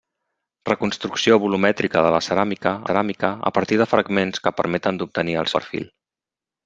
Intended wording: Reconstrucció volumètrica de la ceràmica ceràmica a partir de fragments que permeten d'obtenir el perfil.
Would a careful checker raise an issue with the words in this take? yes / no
no